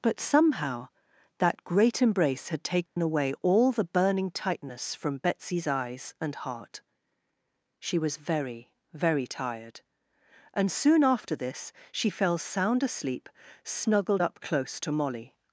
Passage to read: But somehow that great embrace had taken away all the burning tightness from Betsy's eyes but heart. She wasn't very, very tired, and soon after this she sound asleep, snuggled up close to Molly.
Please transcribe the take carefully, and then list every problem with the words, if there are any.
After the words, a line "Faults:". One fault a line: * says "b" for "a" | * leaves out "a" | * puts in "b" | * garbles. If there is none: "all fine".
But somehow that great embrace had taken away all the burning tightness from Betsy's eyes and heart. She was very, very tired, and soon after this she fell sound asleep, snuggled up close to Molly.
Faults:
* says "and" for "but"
* says "was" for "wasn't"
* puts in "fell"